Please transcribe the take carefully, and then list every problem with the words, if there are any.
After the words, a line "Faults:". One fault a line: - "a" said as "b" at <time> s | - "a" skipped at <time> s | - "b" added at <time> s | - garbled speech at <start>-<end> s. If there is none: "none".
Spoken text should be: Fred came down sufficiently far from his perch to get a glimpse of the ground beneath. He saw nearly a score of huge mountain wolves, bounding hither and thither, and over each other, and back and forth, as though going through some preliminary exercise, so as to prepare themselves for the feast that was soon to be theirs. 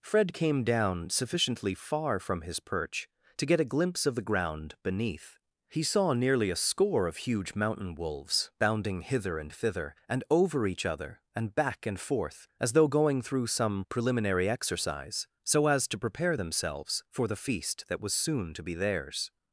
Fred came down sufficiently far from his perch to get a glimpse of the ground beneath. He saw nearly a score of huge mountain wolves, bounding hither and thither, and over each other, and back and forth, as though going through some preliminary exercise, so as to prepare themselves for the feast that was soon to be theirs.
Faults:
none